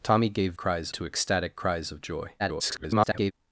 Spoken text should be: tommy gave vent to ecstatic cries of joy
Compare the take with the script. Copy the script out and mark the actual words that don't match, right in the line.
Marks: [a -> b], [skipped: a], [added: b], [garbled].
tommy gave [vent -> cries] to ecstatic cries of joy [garbled]